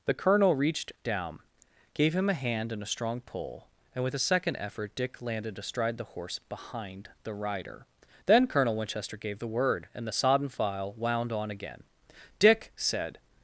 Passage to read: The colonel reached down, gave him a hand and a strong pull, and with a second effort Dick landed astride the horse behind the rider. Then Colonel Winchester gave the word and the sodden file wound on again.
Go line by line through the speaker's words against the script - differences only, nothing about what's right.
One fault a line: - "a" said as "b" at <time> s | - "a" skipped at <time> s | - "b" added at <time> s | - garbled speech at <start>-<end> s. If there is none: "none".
- "Dick said" added at 12.4 s